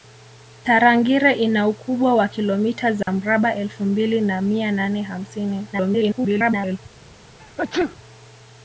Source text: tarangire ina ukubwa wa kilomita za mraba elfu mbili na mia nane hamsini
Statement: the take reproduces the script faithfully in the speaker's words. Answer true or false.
false